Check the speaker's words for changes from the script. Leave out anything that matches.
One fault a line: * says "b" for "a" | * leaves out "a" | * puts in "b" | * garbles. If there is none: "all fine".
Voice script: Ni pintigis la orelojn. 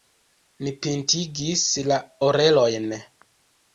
all fine